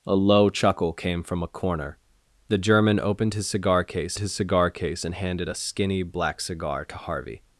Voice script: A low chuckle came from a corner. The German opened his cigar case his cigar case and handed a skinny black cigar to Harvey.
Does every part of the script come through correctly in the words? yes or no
yes